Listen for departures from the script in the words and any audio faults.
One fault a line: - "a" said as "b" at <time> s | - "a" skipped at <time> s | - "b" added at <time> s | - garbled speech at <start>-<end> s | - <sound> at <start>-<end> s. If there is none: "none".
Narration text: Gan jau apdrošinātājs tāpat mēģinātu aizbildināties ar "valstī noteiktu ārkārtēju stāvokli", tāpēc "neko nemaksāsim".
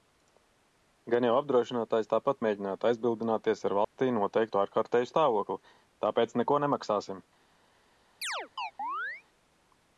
- dropout at 3.8-4.0 s
- chirp at 8.2-9.2 s